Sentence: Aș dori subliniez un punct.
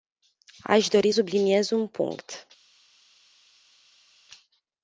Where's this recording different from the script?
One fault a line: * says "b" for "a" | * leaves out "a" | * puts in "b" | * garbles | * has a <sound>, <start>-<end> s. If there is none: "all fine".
all fine